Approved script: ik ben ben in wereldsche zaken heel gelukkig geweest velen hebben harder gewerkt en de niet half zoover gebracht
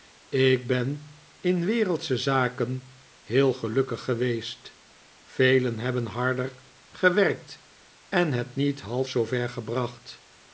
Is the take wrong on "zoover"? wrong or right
right